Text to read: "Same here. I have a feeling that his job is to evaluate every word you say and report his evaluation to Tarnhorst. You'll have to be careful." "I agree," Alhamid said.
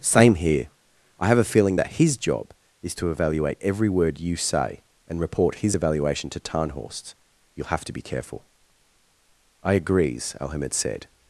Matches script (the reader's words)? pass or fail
fail